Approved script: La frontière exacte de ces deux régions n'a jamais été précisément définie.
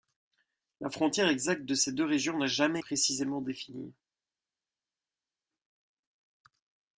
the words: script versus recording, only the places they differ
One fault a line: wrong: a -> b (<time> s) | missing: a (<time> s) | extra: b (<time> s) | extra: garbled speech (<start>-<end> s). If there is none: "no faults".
missing: été (2.8 s)